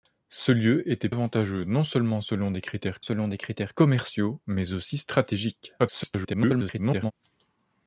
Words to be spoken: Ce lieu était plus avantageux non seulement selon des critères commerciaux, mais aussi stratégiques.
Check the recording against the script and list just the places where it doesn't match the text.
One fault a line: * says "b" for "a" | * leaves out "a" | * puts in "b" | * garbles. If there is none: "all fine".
* leaves out "plus"
* puts in "selon des critères"
* garbles